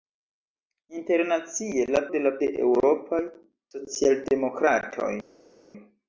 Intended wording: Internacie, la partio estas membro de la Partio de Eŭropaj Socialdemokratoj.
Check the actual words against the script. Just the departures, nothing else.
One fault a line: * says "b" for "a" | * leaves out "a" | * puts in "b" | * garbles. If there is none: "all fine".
* leaves out "partio estas membro"
* leaves out "Partio"